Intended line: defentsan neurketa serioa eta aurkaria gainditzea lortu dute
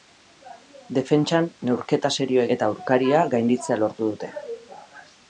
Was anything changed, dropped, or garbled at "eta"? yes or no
no